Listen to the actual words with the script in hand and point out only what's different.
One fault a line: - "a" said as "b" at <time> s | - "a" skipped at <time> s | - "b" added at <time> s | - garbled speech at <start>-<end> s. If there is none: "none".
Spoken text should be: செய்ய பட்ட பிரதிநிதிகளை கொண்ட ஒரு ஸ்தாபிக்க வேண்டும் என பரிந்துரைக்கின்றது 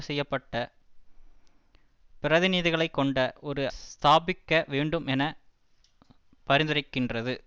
none